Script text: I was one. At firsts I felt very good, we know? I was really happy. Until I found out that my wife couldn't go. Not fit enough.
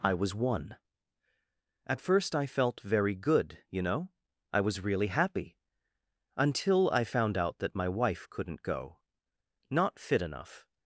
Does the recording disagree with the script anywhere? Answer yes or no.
yes